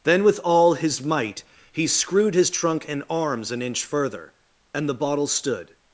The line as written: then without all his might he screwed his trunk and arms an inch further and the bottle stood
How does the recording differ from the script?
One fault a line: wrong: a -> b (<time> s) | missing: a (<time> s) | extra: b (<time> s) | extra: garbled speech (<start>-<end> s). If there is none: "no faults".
wrong: without -> with (0.2 s)